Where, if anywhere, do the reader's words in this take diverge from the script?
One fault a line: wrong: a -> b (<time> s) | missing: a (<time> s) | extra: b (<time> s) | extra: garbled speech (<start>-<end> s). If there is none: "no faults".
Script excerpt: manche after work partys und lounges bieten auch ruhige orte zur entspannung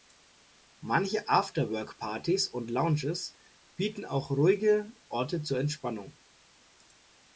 no faults